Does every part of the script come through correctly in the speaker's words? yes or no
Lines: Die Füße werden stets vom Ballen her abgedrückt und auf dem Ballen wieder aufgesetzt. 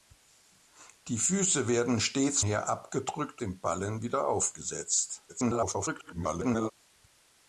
no